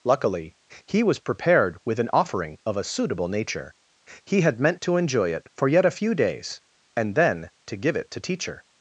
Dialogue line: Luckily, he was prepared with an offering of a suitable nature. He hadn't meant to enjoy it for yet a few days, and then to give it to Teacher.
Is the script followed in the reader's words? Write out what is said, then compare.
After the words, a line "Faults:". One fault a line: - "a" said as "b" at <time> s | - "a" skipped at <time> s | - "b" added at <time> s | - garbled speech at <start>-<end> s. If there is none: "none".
Luckily, he was prepared with an offering of a suitable nature. He had meant to enjoy it for yet a few days, and then to give it to Teacher.
Faults:
- "hadn't" said as "had" at 4.4 s